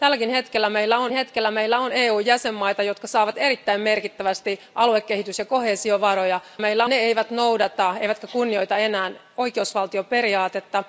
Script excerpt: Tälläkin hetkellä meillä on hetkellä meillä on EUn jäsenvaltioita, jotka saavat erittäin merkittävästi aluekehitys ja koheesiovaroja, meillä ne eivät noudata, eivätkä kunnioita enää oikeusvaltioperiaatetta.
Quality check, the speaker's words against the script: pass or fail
pass